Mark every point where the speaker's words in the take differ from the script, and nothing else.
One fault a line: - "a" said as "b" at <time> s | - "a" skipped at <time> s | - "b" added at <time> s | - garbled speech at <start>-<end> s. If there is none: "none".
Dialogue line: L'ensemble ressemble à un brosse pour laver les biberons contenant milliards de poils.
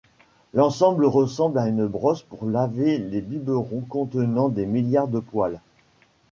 - "un" said as "une" at 1.7 s
- "des" added at 4.5 s